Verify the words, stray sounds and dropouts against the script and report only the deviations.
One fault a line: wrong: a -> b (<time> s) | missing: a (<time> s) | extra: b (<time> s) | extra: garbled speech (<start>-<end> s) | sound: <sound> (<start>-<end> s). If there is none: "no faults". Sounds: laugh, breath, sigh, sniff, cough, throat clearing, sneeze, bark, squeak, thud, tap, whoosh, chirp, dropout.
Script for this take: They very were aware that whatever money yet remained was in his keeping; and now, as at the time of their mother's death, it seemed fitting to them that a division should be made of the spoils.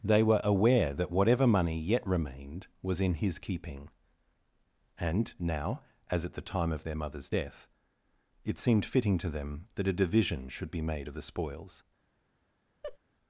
missing: very (0.2 s)
sound: laugh (12.8-13.0 s)